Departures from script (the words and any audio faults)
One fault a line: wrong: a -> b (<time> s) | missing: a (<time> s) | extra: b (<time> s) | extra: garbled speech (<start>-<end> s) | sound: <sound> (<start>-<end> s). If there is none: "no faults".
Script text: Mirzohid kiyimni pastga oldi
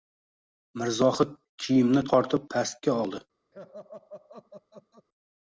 extra: tortib (2.1 s)
sound: laugh (3.5-5.1 s)